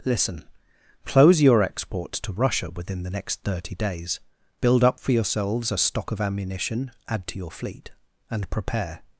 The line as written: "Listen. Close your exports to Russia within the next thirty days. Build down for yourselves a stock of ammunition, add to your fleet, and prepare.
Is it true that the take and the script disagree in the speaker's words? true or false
true